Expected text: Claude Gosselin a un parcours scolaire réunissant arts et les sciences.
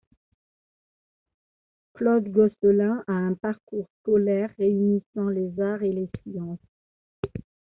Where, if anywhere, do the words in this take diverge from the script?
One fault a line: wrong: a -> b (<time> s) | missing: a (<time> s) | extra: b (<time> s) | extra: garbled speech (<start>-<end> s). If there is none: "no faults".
extra: les (5.3 s)